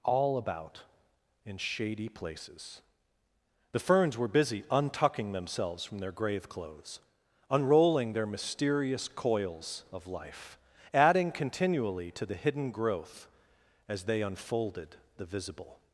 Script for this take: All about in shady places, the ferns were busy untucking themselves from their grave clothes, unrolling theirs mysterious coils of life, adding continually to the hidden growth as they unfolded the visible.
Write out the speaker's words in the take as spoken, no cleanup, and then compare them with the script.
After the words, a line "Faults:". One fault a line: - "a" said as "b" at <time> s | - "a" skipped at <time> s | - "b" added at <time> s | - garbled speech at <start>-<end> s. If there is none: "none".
All about in shady places, the ferns were busy untucking themselves from their grave clothes, unrolling their mysterious coils of life, adding continually to the hidden growth as they unfolded the visible.
Faults:
- "theirs" said as "their" at 8.1 s